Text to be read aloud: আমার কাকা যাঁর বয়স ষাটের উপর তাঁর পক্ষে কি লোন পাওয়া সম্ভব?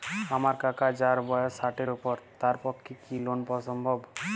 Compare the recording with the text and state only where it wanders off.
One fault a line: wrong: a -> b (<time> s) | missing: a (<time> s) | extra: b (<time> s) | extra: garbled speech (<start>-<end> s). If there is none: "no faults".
no faults